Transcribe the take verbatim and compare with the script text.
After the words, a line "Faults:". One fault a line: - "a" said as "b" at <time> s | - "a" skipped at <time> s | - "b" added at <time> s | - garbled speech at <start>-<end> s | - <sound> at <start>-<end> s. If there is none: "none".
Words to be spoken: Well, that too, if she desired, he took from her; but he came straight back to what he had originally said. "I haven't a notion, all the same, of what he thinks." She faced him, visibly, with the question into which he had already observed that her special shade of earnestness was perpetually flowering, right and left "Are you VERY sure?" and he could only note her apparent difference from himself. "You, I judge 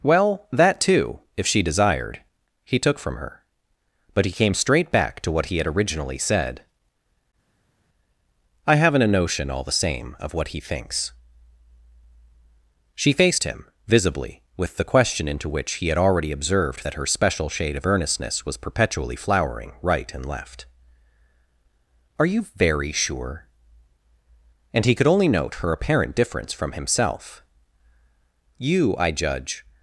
Well, that too, if she desired, he took from her; but he came straight back to what he had originally said. "I haven't a notion, all the same, of what he thinks." She faced him, visibly, with the question into which he had already observed that her special shade of earnestness was perpetually flowering, right and left "Are you VERY sure?" and he could only note her apparent difference from himself. "You, I judge
Faults:
none